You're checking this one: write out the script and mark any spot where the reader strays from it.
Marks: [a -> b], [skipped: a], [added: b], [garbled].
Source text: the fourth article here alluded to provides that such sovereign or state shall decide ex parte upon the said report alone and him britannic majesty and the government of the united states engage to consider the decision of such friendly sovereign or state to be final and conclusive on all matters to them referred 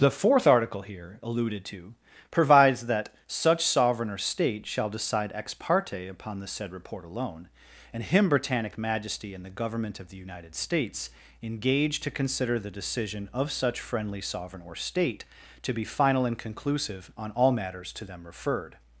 the fourth article here alluded to provides that such sovereign or state shall decide ex parte upon the said report alone and him britannic majesty and the government of the united states engage to consider the decision of such friendly sovereign or state to be final and conclusive on all matters to them referred